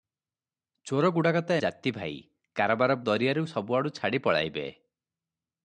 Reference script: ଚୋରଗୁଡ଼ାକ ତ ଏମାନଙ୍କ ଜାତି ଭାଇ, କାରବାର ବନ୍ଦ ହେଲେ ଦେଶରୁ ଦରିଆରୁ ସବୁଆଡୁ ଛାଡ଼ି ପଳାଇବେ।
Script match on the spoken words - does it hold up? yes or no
no